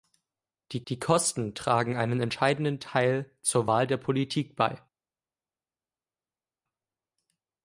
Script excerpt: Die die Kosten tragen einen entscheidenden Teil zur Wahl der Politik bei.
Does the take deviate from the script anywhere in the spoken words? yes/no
no